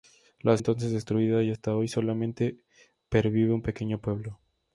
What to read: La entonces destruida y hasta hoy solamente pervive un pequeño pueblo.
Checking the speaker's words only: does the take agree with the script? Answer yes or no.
yes